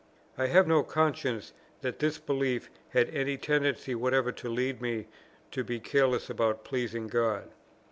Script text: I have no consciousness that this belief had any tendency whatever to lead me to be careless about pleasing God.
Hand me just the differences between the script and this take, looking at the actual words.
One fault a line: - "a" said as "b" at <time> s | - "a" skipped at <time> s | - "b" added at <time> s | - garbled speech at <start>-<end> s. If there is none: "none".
none